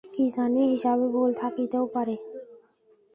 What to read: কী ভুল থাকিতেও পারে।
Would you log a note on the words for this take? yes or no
yes